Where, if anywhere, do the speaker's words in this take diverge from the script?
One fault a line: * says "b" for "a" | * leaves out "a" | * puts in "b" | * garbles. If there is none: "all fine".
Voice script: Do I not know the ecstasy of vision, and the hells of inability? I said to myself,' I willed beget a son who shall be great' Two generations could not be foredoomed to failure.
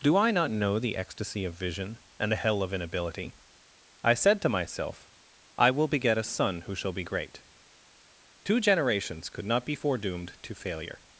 * says "hell" for "hells"
* says "will" for "willed"